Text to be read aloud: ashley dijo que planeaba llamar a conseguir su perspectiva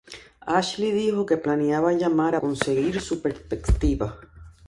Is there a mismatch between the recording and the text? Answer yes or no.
no